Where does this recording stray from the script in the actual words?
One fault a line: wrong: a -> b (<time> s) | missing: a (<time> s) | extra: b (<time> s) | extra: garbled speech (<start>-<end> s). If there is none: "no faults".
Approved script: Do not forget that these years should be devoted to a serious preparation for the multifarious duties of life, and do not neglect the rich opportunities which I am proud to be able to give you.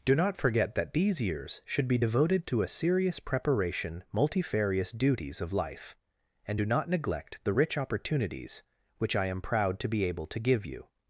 missing: for the (4.0 s)